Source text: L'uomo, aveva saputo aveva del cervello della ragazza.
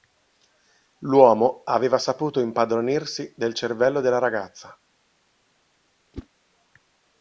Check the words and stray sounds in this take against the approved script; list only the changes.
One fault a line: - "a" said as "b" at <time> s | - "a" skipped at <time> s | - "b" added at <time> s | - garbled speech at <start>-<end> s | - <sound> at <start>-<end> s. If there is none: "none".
- "aveva" said as "impadronirsi" at 2.4 s
- whoosh at 6.1-6.3 s